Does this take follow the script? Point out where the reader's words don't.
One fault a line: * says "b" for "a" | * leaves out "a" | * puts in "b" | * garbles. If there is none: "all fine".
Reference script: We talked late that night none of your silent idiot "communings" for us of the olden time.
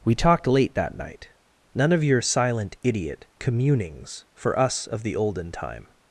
all fine